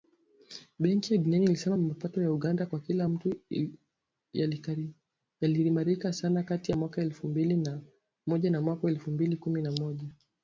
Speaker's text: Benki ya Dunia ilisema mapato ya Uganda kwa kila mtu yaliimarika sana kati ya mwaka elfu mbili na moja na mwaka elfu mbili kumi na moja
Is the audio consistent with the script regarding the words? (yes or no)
yes